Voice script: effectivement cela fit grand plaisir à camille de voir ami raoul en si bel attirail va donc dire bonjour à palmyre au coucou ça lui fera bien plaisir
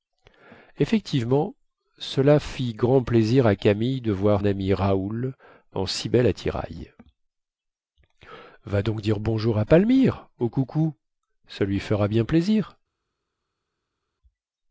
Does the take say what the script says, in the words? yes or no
yes